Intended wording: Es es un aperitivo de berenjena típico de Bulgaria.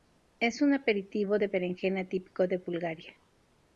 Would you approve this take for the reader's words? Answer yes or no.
no